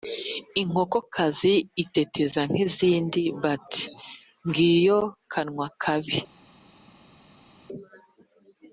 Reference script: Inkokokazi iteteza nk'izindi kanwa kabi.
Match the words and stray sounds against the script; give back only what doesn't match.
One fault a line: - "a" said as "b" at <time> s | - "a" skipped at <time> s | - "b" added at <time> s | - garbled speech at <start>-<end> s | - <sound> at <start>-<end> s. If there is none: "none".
- "bati ngiyo" added at 3.4 s